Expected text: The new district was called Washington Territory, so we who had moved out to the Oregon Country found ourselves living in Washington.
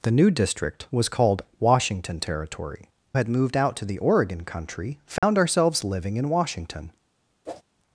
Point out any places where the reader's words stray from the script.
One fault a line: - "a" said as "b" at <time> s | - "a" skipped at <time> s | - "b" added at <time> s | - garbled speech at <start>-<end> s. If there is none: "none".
- "so we who" skipped at 2.9 s